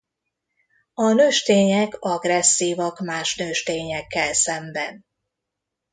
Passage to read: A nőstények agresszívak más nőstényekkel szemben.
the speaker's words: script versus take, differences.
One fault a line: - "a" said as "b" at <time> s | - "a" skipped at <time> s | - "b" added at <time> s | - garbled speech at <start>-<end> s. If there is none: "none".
none